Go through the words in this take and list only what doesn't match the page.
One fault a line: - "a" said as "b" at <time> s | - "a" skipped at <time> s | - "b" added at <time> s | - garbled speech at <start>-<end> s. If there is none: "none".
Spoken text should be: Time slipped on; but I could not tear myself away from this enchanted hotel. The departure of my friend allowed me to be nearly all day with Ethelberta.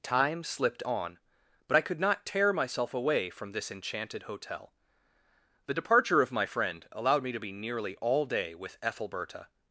none